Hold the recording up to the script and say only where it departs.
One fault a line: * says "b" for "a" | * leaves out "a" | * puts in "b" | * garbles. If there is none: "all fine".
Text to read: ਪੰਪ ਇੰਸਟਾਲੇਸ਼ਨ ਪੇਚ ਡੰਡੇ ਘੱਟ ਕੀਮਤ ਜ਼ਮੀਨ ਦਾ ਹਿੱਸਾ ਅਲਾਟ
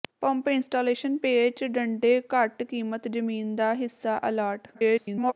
* garbles